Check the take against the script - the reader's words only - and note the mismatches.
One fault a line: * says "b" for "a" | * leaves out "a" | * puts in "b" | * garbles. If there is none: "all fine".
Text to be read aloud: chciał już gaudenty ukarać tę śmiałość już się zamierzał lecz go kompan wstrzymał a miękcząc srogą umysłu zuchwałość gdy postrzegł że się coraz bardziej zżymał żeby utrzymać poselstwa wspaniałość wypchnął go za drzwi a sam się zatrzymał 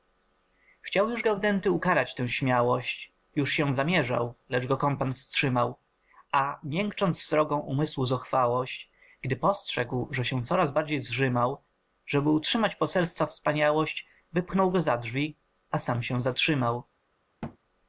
all fine